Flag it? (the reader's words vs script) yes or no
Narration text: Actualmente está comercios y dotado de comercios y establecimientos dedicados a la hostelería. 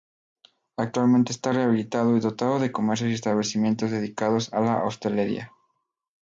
yes